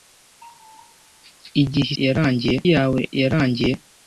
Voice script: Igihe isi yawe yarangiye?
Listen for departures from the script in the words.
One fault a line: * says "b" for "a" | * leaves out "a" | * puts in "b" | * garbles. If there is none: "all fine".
* says "yarangiye" for "isi"